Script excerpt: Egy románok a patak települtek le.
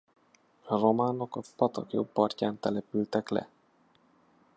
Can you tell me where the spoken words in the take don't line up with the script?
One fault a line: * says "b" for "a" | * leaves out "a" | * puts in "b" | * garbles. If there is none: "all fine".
* says "A" for "Egy"
* puts in "jobb partján"